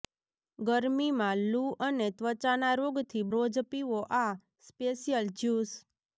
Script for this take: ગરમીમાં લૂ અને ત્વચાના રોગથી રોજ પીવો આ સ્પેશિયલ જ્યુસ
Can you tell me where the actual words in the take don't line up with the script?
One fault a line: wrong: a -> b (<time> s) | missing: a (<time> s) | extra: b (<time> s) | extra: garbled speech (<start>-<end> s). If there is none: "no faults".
no faults